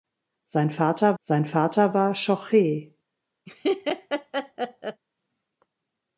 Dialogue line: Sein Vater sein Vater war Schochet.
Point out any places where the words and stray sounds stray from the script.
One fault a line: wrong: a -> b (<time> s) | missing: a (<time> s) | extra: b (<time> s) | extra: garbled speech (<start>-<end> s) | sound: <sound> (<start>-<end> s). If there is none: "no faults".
sound: laugh (3.5-5.0 s)